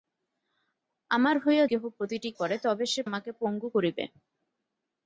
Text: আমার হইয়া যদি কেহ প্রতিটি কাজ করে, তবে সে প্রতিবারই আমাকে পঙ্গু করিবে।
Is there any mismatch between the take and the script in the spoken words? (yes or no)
yes